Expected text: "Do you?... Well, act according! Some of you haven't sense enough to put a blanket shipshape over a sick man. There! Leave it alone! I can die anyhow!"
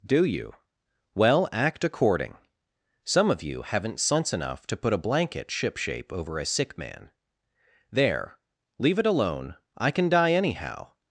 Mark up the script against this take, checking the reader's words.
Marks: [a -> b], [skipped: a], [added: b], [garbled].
"Do you?... Well, act according! Some of you haven't sense enough to put a blanket shipshape over a sick man. There! Leave it alone! I can die anyhow!"